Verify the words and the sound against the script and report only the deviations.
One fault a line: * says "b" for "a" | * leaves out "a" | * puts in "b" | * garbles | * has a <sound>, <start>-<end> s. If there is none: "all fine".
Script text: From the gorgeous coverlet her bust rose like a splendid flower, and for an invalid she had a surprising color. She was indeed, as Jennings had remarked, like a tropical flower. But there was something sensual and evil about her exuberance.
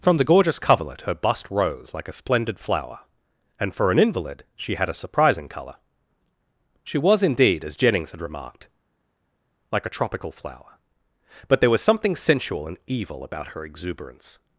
all fine